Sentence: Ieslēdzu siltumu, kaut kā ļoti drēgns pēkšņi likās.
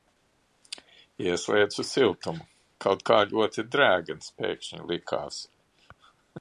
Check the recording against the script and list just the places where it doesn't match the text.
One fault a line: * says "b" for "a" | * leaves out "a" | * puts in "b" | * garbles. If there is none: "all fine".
all fine